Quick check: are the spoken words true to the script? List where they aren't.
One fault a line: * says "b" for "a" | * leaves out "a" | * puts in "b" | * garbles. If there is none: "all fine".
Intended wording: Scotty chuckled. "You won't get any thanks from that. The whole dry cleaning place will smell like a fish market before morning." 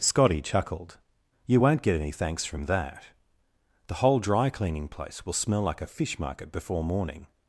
all fine